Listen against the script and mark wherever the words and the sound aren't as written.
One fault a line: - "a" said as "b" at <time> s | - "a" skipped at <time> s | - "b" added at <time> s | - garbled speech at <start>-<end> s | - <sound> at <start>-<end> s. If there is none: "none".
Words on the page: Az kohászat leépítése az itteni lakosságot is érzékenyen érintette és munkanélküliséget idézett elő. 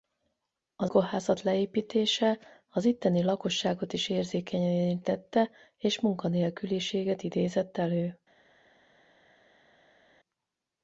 none